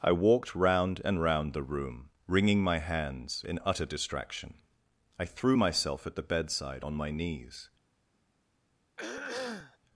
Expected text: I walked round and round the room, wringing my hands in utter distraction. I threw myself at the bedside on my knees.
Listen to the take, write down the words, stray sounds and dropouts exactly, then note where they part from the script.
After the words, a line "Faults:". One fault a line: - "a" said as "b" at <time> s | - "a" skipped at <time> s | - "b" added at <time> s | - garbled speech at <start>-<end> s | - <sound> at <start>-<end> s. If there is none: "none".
I walked round and round the room, wringing my hands in utter distraction. I threw myself at the bedside on my knees.
Faults:
- throat clearing at 9.0-9.8 s